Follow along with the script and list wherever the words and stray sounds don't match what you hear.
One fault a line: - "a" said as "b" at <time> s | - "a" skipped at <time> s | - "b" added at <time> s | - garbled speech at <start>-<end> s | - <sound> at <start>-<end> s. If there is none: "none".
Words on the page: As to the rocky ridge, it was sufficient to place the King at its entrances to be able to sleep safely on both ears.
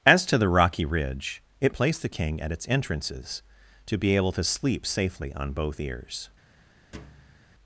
- "was sufficient to" skipped at 1.8 s
- thud at 6.9-7.5 s